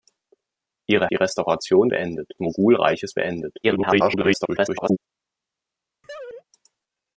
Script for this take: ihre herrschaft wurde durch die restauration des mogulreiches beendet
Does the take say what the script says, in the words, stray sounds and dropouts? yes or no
no